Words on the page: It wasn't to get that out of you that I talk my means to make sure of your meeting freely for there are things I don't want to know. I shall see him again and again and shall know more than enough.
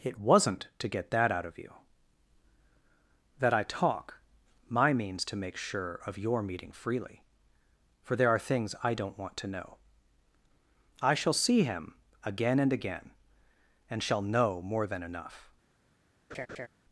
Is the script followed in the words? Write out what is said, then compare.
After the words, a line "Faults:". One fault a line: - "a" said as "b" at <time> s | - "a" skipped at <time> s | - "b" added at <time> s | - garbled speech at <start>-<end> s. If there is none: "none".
It wasn't to get that out of you that I talk my means to make sure of your meeting freely for there are things I don't want to know. I shall see him again and again and shall know more than enough.
Faults:
none